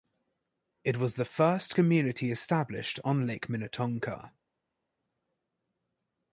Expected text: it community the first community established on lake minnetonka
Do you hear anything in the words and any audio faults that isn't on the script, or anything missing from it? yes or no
yes